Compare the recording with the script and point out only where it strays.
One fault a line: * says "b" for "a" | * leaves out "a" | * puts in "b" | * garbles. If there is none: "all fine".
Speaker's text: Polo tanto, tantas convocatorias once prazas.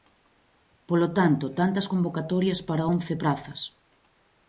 * puts in "para"